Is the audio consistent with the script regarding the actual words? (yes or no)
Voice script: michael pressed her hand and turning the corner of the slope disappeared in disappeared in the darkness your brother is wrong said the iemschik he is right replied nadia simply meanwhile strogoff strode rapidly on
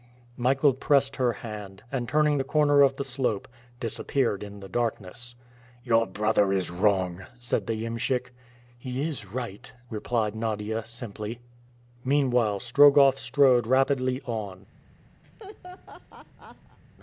no